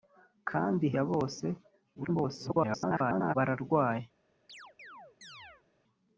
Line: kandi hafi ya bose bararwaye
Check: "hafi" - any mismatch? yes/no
yes